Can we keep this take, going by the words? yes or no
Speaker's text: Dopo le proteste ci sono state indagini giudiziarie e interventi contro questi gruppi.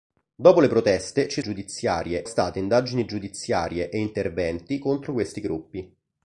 no